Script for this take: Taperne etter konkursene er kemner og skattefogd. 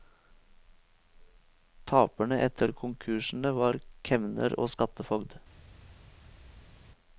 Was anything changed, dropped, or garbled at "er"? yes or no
yes